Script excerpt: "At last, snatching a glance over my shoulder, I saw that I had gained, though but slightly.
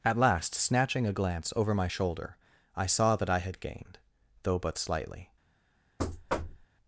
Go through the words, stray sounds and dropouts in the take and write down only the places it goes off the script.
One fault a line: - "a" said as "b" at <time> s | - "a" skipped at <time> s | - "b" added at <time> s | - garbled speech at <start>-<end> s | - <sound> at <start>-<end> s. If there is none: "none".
- thud at 6.0-6.7 s